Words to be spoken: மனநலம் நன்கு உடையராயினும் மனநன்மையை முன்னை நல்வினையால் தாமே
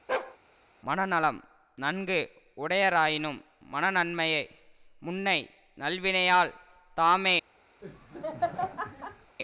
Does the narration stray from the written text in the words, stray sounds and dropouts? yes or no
yes